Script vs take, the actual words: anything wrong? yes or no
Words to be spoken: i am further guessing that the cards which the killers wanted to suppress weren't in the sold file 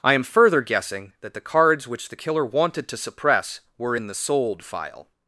yes